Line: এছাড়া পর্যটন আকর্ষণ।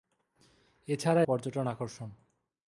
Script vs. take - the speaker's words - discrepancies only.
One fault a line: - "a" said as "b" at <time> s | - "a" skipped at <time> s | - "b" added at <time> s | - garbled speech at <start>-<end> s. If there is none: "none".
none